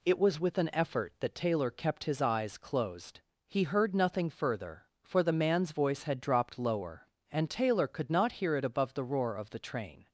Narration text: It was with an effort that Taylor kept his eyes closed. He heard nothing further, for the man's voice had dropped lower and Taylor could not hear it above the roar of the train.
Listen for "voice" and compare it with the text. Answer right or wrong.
right